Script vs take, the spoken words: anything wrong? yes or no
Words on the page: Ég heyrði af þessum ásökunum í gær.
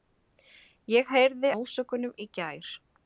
yes